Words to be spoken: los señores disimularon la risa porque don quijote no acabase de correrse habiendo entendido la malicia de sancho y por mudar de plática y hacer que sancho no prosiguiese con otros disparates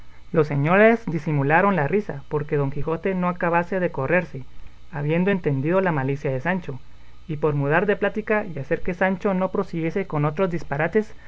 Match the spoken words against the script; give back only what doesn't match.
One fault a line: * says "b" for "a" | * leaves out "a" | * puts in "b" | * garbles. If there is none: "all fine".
all fine